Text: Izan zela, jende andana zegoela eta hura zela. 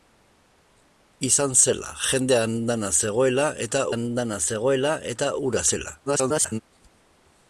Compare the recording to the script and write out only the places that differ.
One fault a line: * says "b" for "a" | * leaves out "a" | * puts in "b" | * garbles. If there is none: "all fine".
* puts in "andana zegoela eta"
* garbles